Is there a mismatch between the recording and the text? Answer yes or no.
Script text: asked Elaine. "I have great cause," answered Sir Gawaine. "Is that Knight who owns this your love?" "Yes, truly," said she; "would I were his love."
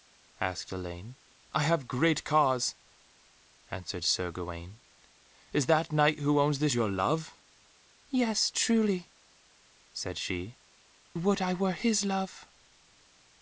no